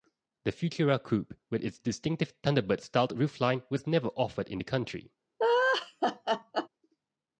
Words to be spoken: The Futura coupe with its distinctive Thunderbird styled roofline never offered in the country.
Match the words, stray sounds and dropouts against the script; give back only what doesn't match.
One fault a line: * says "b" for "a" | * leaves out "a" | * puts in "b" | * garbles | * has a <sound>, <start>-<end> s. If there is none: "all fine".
* puts in "was"
* has a laugh, 5.4-6.7 s